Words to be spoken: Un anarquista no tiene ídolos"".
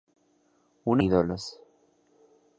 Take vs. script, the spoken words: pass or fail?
fail